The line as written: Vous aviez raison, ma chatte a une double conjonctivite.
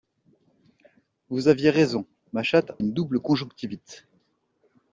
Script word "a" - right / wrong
wrong